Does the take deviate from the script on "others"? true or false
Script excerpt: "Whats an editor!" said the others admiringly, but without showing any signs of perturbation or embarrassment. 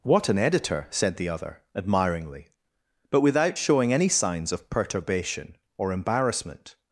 true